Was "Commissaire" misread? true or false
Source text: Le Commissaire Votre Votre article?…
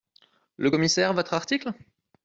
false